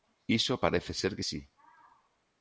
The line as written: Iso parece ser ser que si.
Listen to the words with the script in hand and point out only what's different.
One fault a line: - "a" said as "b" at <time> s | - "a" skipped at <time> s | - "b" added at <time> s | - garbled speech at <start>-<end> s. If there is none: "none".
- "ser" skipped at 1.1 s